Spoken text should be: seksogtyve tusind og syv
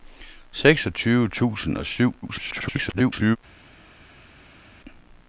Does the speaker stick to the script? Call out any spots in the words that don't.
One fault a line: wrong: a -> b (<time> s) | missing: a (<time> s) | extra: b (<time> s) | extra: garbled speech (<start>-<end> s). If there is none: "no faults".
extra: garbled speech (2.2-3.4 s)